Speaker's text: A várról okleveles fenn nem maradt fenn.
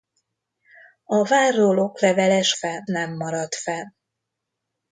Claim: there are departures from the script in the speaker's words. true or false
false